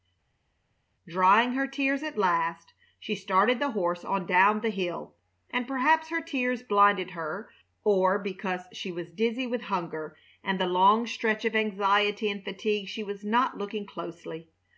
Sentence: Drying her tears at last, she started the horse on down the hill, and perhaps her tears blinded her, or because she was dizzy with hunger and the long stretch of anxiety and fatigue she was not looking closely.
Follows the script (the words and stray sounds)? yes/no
yes